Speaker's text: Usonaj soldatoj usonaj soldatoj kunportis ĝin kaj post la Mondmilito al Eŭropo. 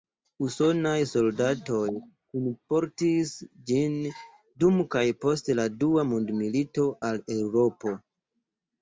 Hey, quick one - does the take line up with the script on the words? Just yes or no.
no